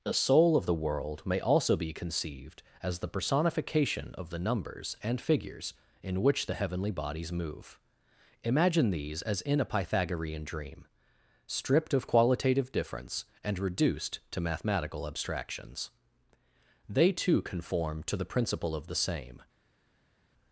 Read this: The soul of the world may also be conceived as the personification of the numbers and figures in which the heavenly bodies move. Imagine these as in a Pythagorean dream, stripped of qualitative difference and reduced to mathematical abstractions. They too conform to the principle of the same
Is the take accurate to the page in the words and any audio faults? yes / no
yes